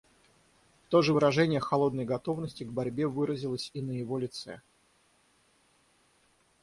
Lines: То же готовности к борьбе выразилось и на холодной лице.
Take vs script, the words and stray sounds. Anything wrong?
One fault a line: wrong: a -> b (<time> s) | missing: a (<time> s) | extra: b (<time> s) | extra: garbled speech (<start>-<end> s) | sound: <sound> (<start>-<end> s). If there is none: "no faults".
extra: выражение холодной (1.1 s)
wrong: холодной -> его (3.9 s)